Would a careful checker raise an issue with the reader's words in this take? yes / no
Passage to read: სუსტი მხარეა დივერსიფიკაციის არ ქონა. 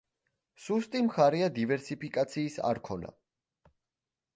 no